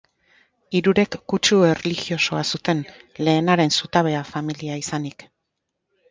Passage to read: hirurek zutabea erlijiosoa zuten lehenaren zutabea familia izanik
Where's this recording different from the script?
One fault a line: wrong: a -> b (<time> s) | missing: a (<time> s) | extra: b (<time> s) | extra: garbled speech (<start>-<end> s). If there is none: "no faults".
wrong: zutabea -> kutsu (1.3 s)